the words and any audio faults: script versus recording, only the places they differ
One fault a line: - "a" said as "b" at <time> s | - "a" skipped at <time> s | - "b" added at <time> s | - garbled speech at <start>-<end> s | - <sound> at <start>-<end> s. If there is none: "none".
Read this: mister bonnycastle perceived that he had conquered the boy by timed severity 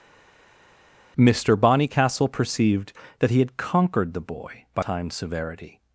none